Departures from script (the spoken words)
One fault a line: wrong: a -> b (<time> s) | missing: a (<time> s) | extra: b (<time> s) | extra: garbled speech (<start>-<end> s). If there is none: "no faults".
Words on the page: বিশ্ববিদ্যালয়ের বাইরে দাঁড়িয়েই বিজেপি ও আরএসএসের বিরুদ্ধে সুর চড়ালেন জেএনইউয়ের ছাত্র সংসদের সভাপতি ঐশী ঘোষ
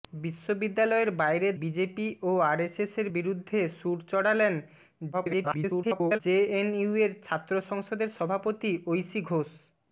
missing: দাঁড়িয়েই (1.5 s)
extra: garbled speech (5.1-6.2 s)